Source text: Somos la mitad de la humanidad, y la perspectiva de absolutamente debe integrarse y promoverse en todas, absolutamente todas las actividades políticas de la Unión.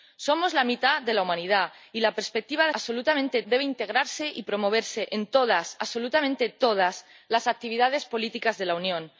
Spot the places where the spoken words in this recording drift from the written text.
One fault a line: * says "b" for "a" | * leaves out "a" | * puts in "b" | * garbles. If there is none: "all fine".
all fine